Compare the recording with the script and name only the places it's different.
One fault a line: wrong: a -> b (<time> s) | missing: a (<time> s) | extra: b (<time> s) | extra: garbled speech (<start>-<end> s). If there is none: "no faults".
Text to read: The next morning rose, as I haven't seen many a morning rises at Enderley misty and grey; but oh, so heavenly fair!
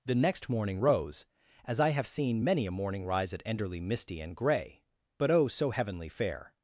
wrong: haven't -> have (1.9 s)
wrong: rises -> rise (3.1 s)